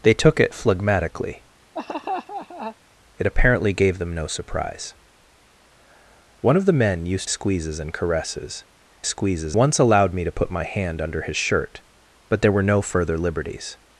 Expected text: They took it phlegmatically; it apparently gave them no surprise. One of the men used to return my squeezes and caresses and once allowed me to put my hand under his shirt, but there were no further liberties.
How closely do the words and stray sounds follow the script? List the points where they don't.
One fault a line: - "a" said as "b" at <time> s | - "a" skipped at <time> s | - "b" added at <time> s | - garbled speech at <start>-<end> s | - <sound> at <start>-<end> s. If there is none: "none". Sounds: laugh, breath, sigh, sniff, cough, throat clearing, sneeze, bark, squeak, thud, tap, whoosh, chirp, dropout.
- laugh at 1.7-2.8 s
- "to return my" skipped at 7.3 s
- "and" said as "squeezes" at 9.0 s